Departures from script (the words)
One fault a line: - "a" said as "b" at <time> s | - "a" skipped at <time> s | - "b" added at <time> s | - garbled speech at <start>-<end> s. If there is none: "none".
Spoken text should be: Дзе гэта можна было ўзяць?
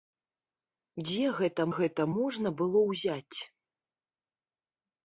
- "гэта" added at 1.8 s